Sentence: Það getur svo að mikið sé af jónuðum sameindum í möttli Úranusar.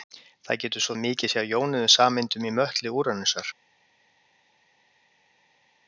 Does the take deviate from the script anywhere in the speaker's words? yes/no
no